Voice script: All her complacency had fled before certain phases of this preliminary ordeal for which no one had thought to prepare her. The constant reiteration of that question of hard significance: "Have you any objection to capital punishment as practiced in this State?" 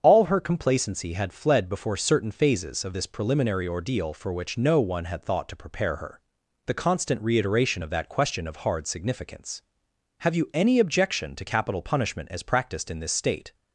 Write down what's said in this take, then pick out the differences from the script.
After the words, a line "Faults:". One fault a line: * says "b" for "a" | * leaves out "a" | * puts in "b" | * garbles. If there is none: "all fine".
All her complacency had fled before certain phases of this preliminary ordeal for which no one had thought to prepare her. The constant reiteration of that question of hard significance: "Have you any objection to capital punishment as practiced in this State?"
Faults:
all fine